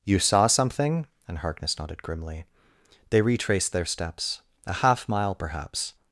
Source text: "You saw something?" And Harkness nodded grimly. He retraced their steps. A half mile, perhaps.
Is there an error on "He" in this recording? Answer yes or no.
yes